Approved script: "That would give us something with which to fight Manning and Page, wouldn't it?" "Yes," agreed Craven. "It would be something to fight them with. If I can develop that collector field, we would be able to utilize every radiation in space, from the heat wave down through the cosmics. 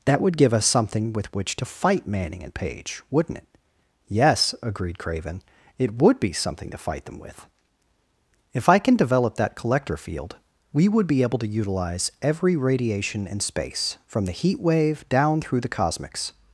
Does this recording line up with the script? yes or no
yes